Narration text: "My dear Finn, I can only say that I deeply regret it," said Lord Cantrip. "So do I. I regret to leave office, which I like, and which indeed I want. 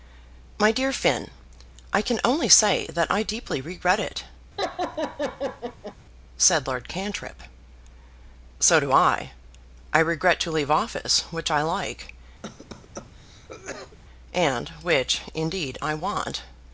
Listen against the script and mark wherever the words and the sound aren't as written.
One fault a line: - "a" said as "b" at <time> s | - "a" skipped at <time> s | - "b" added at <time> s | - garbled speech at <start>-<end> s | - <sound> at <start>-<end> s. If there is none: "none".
- laugh at 4.6-6.0 s
- cough at 12.4-14.0 s